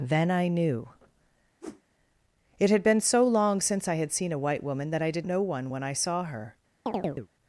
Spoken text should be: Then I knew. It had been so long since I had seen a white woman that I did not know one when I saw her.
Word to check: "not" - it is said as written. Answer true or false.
false